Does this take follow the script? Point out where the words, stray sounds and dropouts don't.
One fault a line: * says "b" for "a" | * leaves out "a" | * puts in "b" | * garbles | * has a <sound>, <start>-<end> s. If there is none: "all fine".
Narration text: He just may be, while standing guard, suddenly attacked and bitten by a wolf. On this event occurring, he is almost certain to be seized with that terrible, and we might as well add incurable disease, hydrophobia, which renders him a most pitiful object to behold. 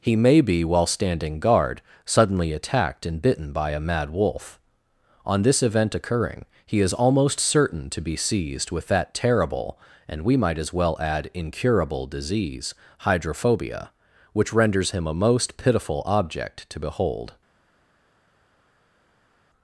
* leaves out "just"
* puts in "mad"